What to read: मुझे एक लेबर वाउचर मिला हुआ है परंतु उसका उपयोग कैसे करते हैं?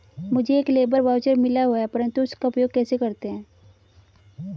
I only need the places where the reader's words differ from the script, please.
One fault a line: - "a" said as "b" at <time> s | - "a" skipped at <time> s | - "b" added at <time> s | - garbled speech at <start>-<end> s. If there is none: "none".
none